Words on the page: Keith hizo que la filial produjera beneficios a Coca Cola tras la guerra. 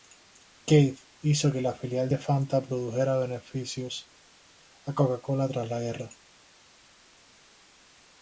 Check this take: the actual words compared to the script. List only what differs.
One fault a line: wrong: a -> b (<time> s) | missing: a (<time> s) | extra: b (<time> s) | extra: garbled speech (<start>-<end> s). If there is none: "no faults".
extra: de Fanta (2.1 s)